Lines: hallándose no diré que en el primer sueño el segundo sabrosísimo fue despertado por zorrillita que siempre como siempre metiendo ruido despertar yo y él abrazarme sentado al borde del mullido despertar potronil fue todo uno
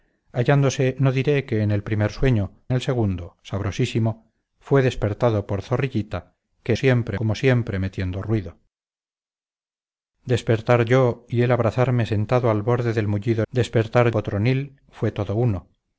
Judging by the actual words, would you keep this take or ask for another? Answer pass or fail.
pass